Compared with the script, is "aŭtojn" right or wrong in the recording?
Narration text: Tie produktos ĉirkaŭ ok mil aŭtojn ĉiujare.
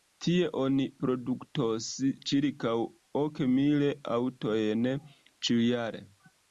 right